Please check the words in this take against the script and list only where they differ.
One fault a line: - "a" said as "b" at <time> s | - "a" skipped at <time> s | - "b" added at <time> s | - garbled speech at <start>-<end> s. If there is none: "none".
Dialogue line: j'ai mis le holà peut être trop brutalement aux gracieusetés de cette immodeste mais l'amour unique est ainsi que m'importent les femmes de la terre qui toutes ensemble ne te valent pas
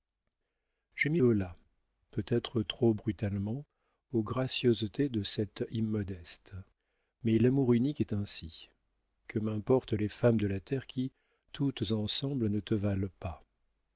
- "le" skipped at 1.2 s